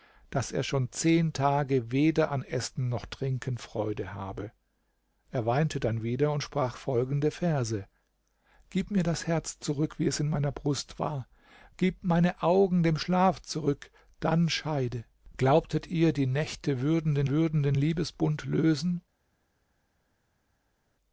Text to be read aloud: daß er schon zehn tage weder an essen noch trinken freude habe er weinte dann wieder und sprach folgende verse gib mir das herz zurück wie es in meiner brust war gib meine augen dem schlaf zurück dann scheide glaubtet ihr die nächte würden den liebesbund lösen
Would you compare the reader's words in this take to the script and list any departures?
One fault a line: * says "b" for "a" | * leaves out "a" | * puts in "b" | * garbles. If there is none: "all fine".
* puts in "würden den"